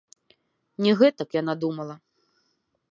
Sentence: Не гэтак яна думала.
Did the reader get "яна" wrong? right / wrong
right